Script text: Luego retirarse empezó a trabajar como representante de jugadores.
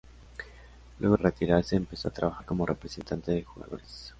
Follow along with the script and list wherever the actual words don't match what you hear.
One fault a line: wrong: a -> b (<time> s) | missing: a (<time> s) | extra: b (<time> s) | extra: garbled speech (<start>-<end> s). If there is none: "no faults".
no faults